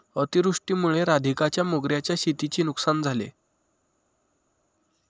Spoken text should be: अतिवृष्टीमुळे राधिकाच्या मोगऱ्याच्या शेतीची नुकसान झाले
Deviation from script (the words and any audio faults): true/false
false